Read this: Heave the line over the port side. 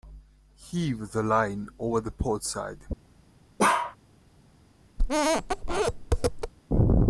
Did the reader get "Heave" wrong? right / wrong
right